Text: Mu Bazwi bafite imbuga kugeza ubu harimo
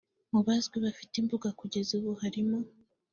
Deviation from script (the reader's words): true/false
false